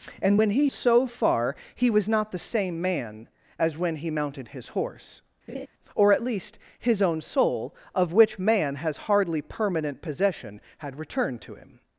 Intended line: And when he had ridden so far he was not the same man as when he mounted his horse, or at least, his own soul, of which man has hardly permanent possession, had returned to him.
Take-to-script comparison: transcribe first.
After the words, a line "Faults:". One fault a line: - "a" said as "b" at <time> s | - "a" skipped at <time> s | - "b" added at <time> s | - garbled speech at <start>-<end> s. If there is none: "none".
And when he so far he was not the same man as when he mounted his horse, or at least, his own soul, of which man has hardly permanent possession, had returned to him.
Faults:
- "had ridden" skipped at 0.7 s